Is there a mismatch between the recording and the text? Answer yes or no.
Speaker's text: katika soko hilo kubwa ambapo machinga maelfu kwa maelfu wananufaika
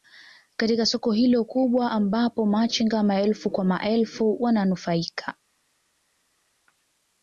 no